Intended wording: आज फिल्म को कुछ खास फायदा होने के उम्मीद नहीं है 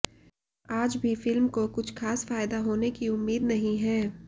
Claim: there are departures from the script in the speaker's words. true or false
true